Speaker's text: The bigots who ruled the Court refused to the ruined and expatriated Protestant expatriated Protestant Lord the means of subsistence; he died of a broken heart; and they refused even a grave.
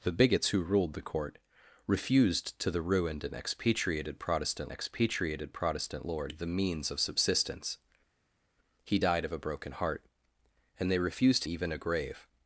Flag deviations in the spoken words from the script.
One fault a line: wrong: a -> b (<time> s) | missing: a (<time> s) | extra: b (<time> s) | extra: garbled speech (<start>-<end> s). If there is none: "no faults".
no faults